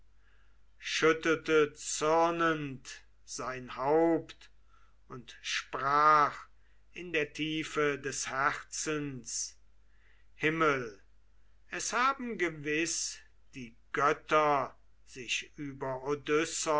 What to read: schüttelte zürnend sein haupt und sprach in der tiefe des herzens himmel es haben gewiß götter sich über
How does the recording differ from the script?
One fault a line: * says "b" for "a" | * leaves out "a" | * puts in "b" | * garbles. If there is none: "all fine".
* puts in "die"